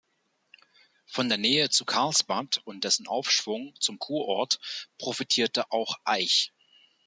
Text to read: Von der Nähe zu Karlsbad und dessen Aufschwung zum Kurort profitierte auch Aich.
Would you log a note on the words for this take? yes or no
no